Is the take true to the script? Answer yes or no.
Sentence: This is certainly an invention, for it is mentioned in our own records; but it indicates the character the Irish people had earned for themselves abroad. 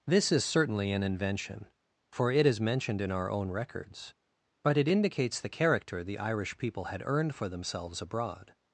yes